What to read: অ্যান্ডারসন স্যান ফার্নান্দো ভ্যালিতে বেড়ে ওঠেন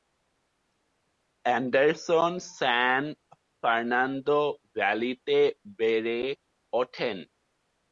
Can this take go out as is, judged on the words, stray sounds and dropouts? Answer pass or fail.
pass